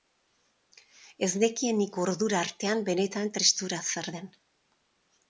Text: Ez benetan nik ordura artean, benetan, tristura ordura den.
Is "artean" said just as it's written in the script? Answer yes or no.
yes